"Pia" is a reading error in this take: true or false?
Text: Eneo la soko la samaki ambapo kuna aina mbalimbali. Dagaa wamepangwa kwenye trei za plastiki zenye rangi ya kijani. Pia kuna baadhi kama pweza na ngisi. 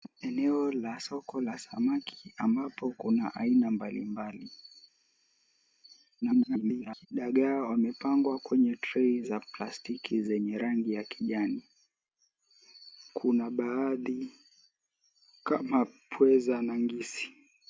true